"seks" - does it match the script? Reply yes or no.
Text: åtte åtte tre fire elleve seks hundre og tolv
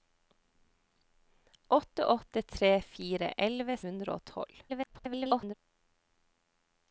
no